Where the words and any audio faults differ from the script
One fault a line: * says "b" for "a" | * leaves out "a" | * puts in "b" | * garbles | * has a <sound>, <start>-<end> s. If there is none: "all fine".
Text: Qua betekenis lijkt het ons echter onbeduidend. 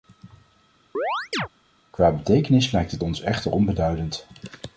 * has a chirp, 0.9-1.5 s